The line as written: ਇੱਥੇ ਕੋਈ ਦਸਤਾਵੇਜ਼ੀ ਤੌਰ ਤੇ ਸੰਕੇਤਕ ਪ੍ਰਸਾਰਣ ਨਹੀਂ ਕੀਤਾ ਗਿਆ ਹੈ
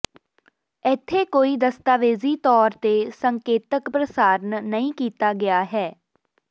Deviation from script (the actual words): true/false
false